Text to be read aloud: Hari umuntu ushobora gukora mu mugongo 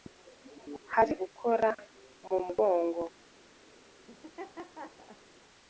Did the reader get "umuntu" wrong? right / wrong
wrong